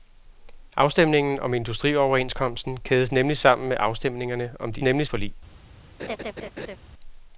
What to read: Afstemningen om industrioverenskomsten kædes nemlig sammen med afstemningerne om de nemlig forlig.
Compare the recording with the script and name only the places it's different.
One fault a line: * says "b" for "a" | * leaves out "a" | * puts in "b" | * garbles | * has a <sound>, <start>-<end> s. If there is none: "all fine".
* has a laugh, 6.0-6.8 s